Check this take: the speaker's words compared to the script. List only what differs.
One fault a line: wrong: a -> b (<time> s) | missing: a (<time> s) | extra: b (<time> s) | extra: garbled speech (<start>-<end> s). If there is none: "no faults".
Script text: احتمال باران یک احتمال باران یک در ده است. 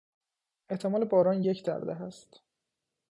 missing: احتمال باران یک (1.6 s)